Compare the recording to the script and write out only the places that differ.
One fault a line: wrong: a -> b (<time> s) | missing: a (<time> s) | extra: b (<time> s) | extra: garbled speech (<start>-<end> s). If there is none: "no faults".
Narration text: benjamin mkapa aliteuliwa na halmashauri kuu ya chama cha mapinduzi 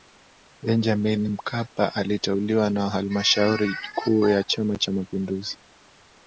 no faults